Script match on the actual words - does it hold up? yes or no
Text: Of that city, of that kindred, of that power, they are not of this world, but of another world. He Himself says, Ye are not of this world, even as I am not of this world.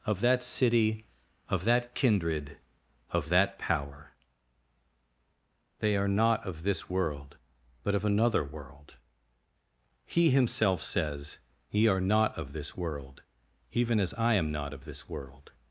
yes